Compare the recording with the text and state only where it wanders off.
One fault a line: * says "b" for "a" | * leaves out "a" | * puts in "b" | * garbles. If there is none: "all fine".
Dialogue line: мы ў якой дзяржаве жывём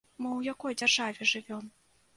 all fine